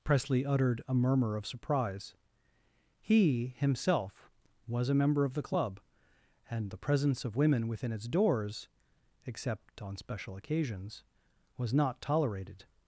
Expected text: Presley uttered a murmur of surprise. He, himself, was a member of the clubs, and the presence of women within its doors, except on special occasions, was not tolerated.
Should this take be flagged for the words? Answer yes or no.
yes